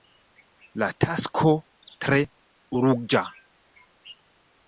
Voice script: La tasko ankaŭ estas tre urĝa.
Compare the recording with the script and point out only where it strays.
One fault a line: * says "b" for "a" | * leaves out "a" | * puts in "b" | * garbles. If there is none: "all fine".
* leaves out "ankaŭ estas"